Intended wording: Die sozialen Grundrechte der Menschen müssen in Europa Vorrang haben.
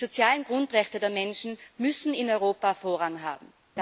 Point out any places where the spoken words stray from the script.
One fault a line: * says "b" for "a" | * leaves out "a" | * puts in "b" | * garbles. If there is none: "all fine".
all fine